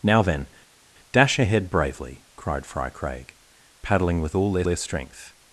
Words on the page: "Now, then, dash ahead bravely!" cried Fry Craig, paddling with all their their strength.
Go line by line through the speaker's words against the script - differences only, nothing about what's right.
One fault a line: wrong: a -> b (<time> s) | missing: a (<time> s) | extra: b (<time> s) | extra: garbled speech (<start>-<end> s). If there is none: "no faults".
no faults